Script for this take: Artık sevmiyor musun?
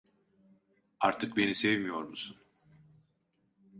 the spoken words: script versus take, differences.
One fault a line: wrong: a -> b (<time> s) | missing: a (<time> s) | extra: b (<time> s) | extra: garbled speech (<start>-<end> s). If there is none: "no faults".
extra: beni (1.4 s)